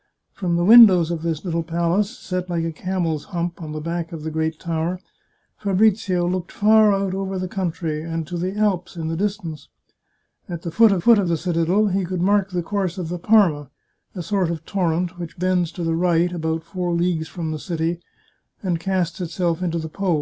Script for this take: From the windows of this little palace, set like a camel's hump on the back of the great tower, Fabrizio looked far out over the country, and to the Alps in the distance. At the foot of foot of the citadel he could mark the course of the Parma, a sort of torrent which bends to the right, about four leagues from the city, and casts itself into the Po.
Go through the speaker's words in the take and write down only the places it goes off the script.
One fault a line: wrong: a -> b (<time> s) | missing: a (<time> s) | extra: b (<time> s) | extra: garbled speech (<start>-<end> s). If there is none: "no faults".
no faults